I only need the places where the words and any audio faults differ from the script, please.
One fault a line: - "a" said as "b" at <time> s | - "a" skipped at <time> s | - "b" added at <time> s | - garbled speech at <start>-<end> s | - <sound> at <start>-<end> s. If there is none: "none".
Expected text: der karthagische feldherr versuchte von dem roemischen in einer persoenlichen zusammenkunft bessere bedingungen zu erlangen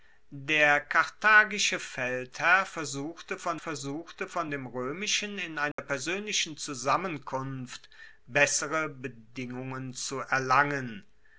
- "versuchte von" added at 3.6 s
- dropout at 5.7-5.8 s